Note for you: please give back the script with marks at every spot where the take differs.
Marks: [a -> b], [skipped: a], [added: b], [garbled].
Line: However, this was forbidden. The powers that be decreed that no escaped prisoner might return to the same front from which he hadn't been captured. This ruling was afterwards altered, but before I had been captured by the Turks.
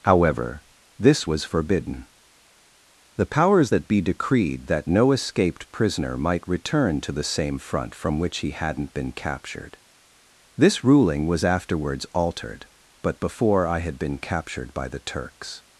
However, this was forbidden. The powers that be decreed that no escaped prisoner might return to the same front from which he hadn't been captured. This ruling was afterwards altered, but before I had been captured by the Turks.